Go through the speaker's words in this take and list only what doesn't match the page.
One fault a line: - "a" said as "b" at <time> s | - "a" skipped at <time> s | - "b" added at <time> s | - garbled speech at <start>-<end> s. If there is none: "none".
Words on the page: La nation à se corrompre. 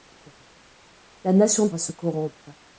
none